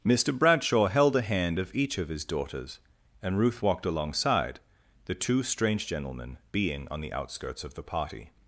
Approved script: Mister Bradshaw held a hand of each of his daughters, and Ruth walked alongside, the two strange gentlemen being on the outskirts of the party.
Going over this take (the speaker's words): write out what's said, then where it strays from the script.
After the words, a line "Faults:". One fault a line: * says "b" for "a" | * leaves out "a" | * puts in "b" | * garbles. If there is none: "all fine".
Mister Bradshaw held a hand of each of his daughters, and Ruth walked alongside, the two strange gentlemen being on the outskirts of the party.
Faults:
all fine